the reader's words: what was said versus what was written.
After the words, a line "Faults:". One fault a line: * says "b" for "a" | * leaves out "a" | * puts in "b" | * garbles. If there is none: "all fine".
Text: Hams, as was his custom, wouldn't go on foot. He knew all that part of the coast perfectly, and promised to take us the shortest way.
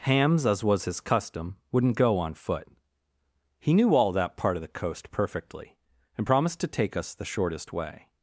Hams, as was his custom, wouldn't go on foot. He knew all that part of the coast perfectly, and promised to take us the shortest way.
Faults:
all fine